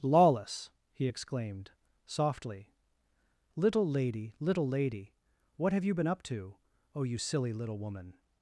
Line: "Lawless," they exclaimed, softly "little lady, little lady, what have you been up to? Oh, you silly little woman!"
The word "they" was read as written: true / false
false